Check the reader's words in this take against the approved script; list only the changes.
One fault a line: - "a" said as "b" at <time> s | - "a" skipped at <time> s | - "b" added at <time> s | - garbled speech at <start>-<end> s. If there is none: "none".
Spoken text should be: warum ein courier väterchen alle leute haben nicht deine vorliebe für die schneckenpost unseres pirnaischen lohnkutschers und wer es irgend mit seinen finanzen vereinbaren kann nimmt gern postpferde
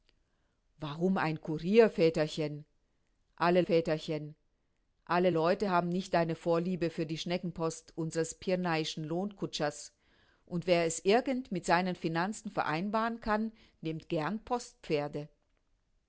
- "väterchen alle" added at 3.6 s